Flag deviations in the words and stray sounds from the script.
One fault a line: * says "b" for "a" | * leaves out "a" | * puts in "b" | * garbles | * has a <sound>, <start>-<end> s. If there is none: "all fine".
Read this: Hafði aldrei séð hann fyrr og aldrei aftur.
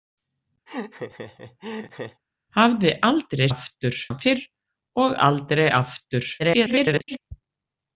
* has a laugh, 0.7-2.2 s
* says "aftur" for "séð"
* garbles